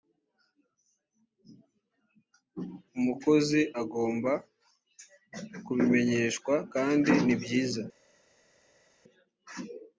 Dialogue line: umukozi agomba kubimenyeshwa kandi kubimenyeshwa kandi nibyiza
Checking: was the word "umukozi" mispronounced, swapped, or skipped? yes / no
no